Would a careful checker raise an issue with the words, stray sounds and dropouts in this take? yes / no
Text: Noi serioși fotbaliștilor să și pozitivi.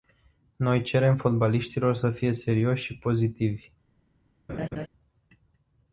yes